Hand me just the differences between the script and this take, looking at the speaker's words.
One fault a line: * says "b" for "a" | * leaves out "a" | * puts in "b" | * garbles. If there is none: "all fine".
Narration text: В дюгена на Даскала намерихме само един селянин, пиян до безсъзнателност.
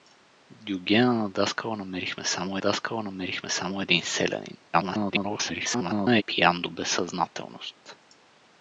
* puts in "Даскала намерихме само"
* garbles